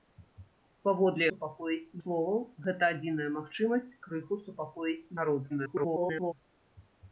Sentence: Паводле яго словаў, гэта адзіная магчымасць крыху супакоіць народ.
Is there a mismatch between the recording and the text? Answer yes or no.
yes